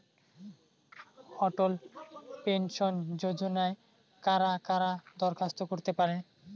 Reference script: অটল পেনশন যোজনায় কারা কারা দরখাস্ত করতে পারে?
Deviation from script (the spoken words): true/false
false